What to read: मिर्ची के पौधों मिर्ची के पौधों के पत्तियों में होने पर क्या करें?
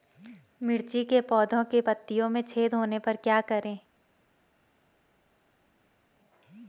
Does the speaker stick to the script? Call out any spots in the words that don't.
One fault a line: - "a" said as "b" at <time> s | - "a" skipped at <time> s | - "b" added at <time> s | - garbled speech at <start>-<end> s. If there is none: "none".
- "मिर्ची" skipped at 1.6 s
- "पौधों के" skipped at 1.8 s
- "छेद" added at 2.4 s